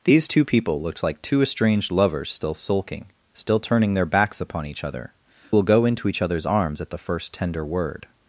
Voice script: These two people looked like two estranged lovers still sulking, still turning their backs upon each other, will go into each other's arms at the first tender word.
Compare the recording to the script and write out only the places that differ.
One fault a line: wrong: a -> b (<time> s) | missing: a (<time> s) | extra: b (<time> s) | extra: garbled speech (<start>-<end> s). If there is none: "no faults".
no faults